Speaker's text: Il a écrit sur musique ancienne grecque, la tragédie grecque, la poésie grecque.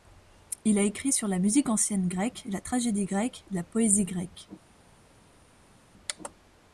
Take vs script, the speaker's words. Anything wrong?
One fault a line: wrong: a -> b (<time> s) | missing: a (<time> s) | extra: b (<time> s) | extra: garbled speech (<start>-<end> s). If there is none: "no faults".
extra: la (1.3 s)